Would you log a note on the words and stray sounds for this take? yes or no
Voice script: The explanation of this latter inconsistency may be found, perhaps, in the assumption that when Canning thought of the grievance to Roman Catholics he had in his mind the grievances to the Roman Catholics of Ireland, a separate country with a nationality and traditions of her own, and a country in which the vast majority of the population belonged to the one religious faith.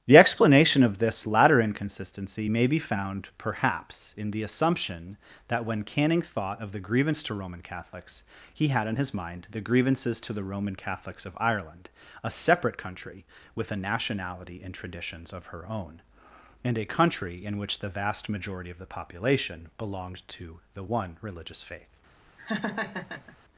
yes